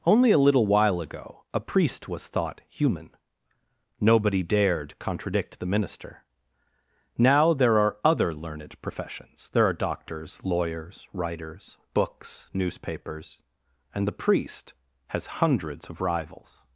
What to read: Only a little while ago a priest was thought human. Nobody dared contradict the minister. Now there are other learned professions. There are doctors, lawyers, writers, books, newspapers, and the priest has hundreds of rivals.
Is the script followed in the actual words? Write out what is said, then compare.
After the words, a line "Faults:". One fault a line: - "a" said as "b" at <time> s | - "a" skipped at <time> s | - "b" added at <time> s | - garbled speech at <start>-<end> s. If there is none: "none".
Only a little while ago a priest was thought human. Nobody dared contradict the minister. Now there are other learned professions. There are doctors, lawyers, writers, books, newspapers, and the priest has hundreds of rivals.
Faults:
none